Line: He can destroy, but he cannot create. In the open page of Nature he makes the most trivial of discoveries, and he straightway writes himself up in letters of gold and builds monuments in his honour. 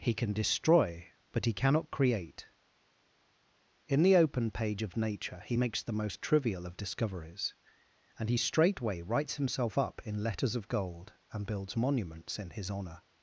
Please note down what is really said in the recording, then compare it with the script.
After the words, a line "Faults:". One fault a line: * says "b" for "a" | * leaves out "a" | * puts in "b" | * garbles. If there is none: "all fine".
He can destroy, but he cannot create. In the open page of Nature he makes the most trivial of discoveries, and he straightway writes himself up in letters of gold and builds monuments in his honour.
Faults:
all fine